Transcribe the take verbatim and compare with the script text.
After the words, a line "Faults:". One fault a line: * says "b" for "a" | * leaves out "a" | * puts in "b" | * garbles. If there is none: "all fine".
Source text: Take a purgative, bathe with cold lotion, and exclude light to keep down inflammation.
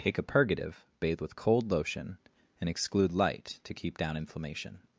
Take a purgative, bathe with cold lotion, and exclude light to keep down inflammation.
Faults:
all fine